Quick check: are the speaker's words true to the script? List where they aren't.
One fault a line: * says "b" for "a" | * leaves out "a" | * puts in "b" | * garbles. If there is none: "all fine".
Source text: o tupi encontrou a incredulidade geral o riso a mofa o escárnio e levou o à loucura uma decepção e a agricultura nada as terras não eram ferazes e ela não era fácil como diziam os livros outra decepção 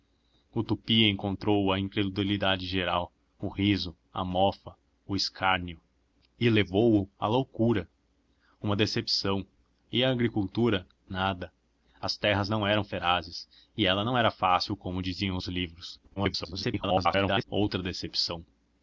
* garbles